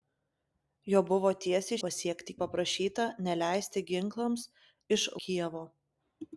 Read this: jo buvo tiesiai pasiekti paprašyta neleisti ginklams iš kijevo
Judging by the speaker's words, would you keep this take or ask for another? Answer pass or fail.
pass